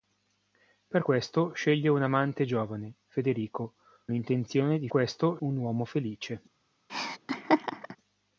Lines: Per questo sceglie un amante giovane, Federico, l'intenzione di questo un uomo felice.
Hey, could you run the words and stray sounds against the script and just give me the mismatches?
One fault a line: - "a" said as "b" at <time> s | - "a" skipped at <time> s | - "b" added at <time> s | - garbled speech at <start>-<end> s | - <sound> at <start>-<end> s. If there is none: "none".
- laugh at 6.9-8.0 s